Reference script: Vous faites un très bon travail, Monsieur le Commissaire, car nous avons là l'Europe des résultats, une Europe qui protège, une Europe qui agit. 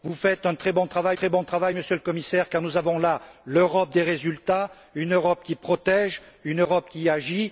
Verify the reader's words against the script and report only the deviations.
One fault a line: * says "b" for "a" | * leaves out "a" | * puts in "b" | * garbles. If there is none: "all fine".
* puts in "très bon travail"